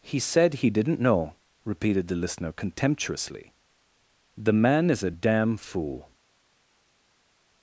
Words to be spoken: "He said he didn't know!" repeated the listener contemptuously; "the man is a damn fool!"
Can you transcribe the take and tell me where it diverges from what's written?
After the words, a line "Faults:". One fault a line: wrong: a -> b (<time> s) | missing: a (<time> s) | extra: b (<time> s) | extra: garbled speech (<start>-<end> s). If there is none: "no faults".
"He said he didn't know!" repeated the listener contemptuously; "the man is a damn fool!"
Faults:
no faults